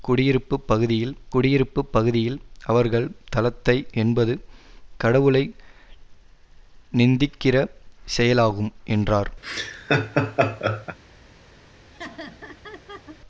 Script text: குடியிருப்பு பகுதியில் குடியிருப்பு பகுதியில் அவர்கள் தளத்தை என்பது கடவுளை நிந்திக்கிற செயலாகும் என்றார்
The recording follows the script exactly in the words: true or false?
true